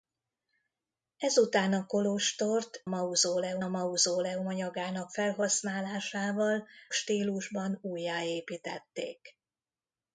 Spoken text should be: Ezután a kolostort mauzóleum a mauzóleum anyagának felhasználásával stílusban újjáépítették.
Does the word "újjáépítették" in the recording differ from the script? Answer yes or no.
no